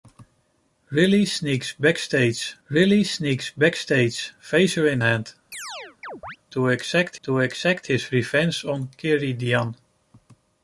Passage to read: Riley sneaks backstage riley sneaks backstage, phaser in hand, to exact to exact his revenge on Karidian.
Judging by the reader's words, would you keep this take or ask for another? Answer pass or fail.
pass